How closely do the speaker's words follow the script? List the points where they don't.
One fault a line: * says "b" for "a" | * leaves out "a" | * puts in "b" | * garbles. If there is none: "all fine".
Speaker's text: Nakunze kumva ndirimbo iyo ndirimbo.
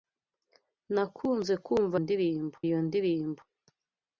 all fine